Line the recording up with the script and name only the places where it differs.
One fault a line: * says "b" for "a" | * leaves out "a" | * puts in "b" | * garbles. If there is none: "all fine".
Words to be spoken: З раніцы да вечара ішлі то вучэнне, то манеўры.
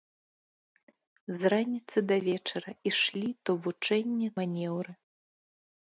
* leaves out "то"